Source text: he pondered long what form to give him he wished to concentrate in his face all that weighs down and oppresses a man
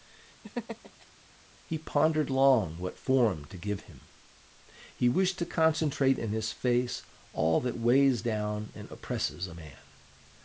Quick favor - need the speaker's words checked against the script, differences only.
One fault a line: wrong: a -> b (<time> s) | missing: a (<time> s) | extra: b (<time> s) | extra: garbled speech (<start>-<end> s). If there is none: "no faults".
no faults